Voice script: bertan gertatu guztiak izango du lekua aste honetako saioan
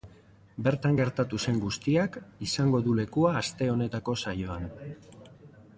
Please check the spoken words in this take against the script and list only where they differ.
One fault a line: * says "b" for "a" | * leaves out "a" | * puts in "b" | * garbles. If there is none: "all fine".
* puts in "zen"